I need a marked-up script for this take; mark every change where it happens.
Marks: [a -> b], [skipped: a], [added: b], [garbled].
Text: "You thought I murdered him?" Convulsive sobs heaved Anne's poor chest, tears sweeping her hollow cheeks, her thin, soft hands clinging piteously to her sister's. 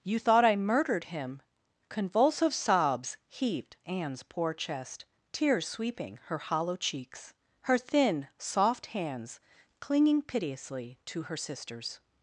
"You thought I murdered him?" Convulsive sobs heaved Anne's poor chest, tears sweeping her hollow cheeks, her thin, soft hands clinging piteously to her sister's.